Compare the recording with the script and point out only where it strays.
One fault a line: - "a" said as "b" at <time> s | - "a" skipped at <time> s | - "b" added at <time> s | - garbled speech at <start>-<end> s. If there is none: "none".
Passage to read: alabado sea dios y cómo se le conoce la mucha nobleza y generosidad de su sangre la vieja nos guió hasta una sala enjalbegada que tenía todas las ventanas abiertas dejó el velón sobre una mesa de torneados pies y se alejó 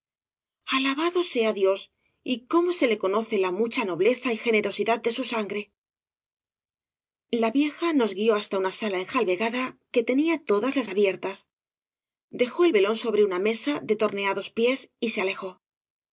- "ventanas" skipped at 10.9 s